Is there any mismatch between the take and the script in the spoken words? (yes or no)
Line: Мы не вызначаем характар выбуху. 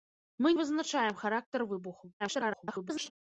yes